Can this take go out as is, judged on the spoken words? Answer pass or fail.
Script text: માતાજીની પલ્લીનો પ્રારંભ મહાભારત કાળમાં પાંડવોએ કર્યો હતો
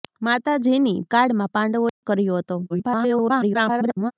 fail